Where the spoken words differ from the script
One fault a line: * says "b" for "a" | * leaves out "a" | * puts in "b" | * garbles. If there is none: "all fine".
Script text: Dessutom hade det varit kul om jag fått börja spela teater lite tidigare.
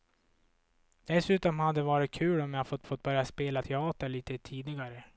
* puts in "fått"